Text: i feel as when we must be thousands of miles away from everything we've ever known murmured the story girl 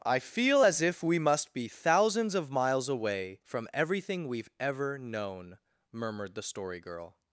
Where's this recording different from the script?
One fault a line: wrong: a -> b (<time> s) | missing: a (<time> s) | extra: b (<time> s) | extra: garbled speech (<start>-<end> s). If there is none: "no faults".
wrong: when -> if (0.8 s)